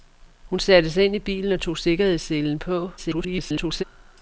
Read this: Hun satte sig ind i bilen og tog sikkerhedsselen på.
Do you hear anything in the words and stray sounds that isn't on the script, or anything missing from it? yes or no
yes